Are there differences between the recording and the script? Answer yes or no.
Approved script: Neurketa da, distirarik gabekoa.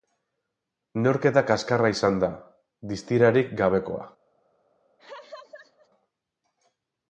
yes